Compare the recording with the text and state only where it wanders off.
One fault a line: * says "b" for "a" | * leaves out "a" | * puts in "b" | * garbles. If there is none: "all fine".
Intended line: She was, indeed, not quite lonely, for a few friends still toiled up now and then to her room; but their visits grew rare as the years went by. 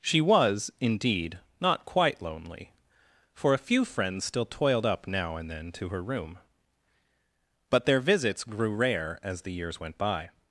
all fine